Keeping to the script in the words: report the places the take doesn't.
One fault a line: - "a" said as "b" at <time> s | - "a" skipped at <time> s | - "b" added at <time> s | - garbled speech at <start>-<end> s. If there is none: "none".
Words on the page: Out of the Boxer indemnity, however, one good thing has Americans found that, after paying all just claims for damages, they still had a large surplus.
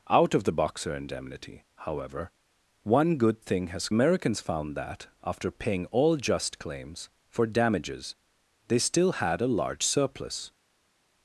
none